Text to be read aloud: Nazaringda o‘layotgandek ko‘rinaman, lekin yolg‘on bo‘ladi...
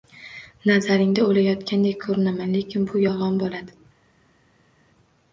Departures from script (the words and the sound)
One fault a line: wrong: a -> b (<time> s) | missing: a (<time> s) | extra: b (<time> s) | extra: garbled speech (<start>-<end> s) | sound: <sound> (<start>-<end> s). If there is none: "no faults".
extra: bu (2.9 s)